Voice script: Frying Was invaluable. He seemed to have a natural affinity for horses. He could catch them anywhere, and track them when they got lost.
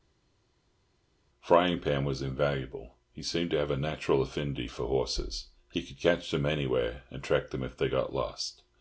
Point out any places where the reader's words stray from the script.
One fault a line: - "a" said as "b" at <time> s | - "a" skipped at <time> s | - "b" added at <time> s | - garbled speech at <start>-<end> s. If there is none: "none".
- "Pan" added at 1.8 s
- "when" said as "if" at 7.6 s